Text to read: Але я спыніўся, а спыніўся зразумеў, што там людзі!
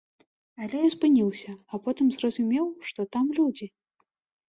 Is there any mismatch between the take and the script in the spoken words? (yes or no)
yes